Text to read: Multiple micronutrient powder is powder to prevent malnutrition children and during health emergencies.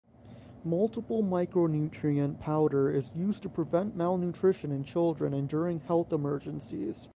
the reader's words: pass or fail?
fail